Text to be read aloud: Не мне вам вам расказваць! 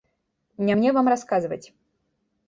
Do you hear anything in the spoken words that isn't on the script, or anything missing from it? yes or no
yes